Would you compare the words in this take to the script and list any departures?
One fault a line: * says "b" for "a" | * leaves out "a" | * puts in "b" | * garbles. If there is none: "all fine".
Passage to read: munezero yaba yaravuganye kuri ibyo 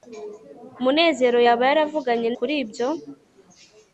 all fine